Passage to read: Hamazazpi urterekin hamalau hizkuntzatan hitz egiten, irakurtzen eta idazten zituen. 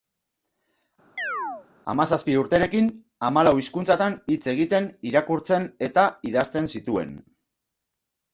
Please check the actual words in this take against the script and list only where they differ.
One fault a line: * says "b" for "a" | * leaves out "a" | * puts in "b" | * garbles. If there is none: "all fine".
all fine